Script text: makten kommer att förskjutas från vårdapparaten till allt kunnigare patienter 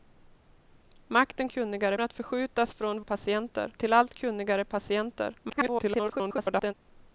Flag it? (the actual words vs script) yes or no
yes